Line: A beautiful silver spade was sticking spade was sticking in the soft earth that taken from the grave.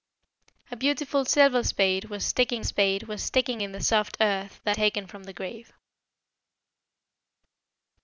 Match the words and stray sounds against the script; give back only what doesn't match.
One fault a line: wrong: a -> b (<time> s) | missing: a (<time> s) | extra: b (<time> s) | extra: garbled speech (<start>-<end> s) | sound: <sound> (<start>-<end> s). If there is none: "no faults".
no faults